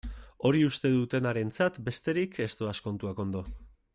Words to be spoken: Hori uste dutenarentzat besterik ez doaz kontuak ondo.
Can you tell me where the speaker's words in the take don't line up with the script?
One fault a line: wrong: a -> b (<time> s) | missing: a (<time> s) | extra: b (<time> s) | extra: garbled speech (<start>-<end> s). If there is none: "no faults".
no faults